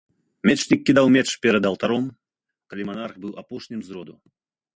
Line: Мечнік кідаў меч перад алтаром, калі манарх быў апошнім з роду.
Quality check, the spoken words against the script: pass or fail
pass